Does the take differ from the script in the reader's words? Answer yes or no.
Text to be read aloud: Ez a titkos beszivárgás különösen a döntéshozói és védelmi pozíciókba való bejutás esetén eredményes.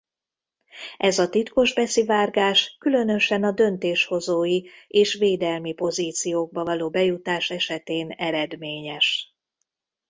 no